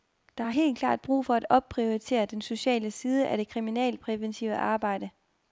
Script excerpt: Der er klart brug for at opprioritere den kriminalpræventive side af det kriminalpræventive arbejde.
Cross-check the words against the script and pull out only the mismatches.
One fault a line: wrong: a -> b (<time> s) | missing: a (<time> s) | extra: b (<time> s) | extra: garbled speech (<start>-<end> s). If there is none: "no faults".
extra: helt (0.5 s)
wrong: kriminalpræventive -> sociale (2.4 s)